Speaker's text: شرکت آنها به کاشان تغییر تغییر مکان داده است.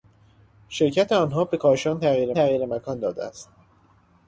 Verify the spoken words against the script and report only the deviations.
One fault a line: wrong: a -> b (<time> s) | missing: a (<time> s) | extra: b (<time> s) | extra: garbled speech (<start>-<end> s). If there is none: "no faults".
no faults